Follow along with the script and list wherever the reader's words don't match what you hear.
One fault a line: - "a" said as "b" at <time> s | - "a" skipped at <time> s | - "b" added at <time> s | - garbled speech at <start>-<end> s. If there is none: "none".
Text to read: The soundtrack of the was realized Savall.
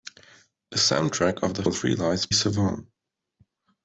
none